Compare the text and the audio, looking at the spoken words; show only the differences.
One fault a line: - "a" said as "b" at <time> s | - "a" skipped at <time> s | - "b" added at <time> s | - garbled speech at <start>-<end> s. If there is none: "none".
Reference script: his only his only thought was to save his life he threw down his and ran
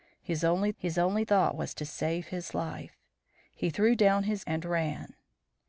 none